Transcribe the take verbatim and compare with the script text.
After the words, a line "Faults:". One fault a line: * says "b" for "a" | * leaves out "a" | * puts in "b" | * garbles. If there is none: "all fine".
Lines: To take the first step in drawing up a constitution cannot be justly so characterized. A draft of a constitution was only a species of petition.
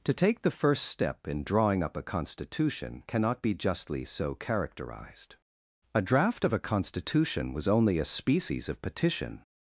To take the first step in drawing up a constitution cannot be justly so characterized. A draft of a constitution was only a species of petition.
Faults:
all fine